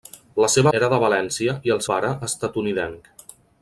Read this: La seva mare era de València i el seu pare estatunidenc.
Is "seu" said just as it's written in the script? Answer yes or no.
no